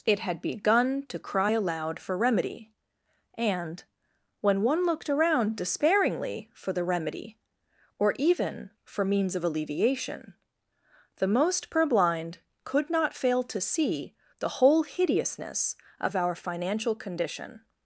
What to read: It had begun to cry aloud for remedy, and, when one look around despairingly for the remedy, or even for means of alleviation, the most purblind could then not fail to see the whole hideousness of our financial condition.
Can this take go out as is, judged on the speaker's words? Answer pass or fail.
fail